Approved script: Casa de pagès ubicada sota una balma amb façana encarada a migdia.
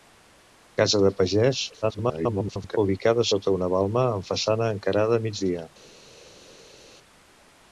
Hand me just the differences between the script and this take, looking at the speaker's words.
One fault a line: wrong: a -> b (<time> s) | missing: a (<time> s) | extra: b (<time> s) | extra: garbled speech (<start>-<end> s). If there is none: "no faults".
extra: garbled speech (1.8-2.8 s)